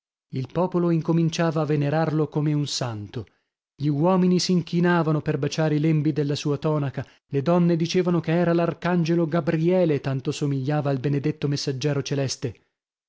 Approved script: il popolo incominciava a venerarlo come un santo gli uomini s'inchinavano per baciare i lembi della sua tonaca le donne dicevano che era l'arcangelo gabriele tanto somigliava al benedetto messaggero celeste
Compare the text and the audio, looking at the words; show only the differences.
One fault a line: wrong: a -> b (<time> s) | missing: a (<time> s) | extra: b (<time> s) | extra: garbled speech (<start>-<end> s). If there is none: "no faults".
no faults